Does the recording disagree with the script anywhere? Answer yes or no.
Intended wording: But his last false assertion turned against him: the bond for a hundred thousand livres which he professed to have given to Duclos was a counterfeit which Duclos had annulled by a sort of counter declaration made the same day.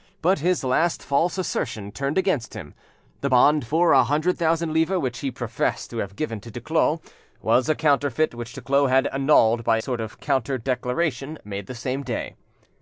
yes